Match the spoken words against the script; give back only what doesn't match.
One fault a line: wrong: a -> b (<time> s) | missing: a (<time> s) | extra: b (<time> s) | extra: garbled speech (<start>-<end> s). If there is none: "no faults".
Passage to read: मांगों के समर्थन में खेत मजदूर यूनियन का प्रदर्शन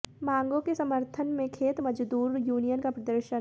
no faults